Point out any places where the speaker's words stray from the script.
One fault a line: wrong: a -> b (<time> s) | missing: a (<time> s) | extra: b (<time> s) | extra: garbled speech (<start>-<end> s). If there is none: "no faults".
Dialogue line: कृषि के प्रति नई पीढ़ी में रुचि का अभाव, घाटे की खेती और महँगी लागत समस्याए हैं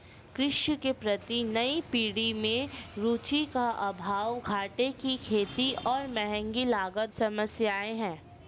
no faults